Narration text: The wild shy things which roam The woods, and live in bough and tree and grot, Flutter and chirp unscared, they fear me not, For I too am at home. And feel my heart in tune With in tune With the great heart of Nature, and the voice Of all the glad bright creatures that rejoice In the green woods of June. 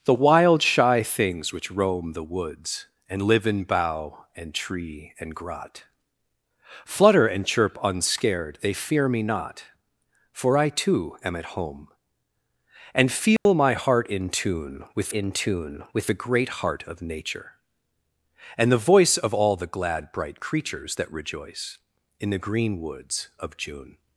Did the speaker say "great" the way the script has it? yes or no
yes